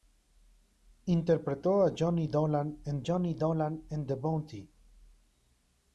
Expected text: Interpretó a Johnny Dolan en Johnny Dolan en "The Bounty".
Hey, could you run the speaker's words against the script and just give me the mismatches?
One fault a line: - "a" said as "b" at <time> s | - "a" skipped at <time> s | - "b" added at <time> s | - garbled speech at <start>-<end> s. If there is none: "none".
none